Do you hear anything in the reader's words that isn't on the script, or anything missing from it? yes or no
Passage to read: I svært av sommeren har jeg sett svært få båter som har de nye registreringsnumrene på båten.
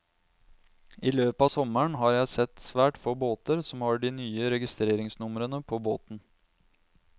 yes